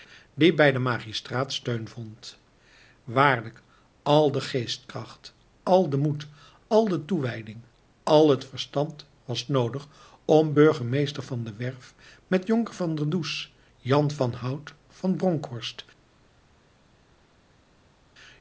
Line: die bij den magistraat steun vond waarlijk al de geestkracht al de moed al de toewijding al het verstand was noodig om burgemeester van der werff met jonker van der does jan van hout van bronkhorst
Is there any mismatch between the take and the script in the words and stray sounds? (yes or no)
no